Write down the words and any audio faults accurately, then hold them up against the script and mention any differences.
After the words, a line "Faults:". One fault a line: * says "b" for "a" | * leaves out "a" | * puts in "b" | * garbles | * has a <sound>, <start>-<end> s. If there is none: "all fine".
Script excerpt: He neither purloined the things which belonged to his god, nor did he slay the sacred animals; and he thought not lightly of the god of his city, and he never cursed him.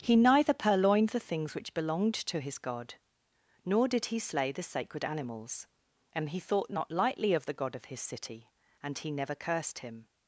He neither purloined the things which belonged to his god, nor did he slay the sacred animals; and he thought not lightly of the god of his city, and he never cursed him.
Faults:
all fine